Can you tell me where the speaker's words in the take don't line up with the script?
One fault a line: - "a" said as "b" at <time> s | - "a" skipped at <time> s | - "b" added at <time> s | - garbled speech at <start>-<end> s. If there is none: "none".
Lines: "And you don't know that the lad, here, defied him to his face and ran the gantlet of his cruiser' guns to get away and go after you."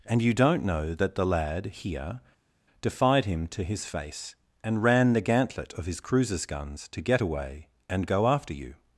- "cruiser" said as "cruisers" at 6.0 s